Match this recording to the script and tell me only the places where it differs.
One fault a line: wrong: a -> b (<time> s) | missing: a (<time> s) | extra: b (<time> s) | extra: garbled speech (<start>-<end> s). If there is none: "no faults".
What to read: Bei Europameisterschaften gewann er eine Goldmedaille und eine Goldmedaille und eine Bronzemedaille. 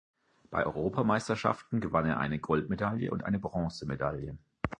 missing: Goldmedaille und eine (3.4 s)